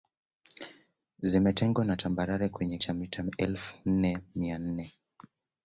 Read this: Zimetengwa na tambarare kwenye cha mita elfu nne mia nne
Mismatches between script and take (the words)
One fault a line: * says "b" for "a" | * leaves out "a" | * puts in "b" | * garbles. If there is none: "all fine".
all fine